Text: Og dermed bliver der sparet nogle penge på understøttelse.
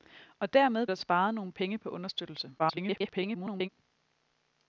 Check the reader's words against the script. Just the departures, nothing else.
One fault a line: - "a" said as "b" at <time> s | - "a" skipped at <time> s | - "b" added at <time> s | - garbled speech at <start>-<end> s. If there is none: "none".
- "bliver" skipped at 0.9 s
- garbled speech at 2.6-3.7 s